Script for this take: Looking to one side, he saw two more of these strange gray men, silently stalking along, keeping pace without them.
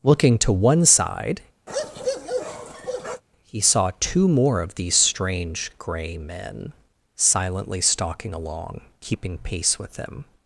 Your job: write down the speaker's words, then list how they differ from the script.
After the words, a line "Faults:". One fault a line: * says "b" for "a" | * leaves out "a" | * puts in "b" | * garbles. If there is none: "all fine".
Looking to one side, he saw two more of these strange gray men, silently stalking along, keeping pace with them.
Faults:
* says "with" for "without"